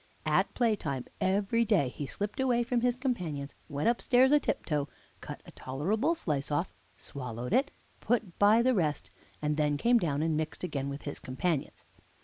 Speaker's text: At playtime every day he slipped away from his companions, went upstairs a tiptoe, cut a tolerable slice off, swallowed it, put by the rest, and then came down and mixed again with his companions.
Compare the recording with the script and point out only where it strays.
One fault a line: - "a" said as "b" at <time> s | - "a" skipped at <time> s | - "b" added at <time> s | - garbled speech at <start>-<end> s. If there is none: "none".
none